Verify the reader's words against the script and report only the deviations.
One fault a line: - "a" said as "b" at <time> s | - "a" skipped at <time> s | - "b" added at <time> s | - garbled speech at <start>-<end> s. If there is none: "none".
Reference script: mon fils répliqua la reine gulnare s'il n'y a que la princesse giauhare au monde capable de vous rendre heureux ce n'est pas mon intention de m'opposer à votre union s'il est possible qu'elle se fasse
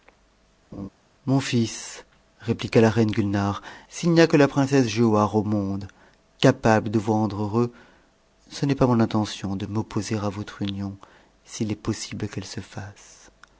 none